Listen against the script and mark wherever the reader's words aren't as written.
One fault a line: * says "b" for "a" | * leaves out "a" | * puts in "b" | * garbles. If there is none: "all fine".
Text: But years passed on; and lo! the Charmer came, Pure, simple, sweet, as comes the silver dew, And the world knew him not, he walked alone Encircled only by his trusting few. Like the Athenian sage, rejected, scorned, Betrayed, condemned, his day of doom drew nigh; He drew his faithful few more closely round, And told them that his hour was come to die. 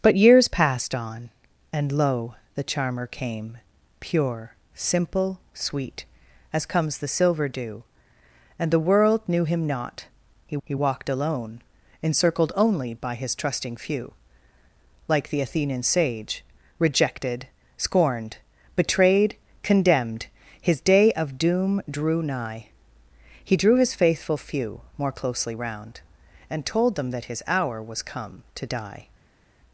* puts in "he"